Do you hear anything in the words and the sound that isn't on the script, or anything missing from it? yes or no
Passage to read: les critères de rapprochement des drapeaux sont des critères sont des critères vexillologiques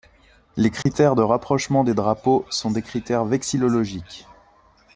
yes